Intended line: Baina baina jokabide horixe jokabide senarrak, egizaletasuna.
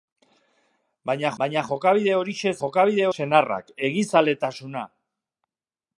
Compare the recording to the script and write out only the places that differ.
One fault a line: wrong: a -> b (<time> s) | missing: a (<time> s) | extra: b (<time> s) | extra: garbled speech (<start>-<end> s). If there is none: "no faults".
no faults